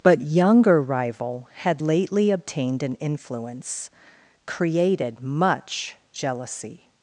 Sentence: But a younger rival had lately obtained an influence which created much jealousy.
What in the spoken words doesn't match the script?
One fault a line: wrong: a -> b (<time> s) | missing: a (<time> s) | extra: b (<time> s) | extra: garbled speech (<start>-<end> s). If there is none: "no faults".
missing: a (0.2 s)
missing: which (3.9 s)